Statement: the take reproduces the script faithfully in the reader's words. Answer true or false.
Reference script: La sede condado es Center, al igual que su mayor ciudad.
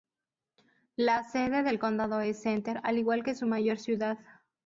false